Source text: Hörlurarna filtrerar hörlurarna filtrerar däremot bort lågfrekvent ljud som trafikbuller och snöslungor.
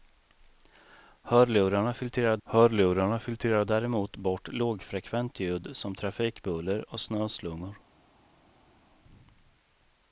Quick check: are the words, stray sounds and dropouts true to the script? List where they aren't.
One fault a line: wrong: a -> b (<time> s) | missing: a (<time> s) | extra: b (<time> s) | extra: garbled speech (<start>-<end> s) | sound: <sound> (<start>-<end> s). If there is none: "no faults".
no faults